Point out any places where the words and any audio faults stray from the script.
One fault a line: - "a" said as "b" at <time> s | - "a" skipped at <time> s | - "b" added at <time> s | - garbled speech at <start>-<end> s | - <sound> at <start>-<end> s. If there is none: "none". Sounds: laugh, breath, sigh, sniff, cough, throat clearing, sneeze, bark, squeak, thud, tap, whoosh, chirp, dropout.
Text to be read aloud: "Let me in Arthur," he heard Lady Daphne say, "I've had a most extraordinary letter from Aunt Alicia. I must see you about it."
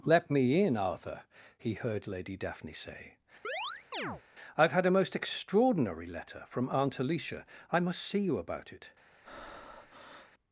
- chirp at 3.4-4.2 s
- breath at 9.2-10.3 s